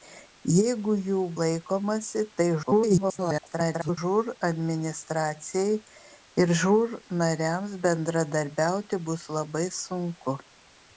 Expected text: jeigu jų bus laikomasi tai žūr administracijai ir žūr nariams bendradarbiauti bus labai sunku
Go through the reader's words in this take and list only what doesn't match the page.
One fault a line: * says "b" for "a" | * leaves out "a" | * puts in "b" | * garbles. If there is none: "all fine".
* leaves out "bus"
* garbles